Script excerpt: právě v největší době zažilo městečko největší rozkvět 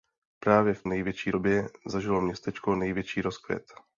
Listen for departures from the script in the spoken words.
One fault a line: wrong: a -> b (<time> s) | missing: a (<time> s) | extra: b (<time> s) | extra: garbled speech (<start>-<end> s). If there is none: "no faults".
no faults